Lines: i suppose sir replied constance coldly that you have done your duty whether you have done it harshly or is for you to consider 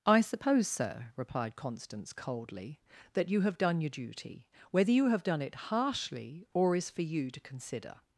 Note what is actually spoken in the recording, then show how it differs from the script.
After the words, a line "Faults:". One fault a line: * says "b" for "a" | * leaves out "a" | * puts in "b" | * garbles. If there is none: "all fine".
i suppose sir replied constance coldly that you have done your duty whether you have done it harshly or is for you to consider
Faults:
all fine